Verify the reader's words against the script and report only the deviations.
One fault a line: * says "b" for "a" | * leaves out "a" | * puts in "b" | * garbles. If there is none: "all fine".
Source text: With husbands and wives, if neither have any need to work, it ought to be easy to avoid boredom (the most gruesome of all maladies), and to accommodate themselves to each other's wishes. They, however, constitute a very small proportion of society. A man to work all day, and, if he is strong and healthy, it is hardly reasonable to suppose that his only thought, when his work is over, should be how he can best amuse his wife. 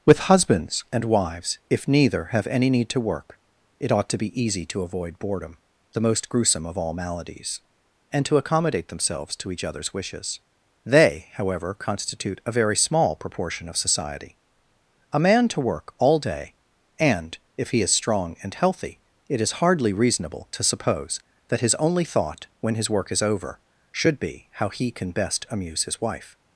all fine